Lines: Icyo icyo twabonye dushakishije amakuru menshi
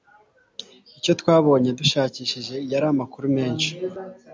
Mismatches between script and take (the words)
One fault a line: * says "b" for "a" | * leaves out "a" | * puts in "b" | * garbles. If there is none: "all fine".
* leaves out "icyo"
* puts in "yari"